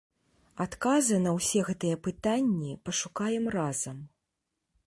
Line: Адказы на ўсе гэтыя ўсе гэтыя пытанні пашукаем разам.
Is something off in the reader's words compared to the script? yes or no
yes